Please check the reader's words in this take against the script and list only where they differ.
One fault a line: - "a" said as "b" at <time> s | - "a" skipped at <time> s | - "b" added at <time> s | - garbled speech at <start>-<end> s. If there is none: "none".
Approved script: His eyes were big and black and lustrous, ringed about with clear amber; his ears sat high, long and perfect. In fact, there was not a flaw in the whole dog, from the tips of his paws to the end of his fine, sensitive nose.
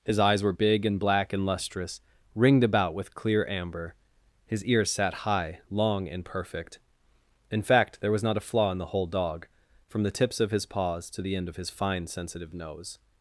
none